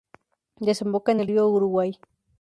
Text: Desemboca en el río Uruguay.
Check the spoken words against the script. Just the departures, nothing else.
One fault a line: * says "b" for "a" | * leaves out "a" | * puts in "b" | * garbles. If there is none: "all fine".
all fine